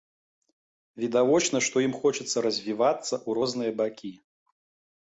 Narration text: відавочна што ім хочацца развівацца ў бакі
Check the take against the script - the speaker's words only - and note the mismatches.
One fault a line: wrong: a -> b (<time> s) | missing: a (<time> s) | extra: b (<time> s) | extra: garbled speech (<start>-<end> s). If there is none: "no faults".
extra: розныя (3.4 s)